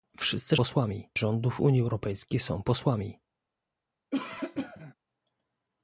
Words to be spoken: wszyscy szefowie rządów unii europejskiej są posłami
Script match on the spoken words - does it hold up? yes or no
no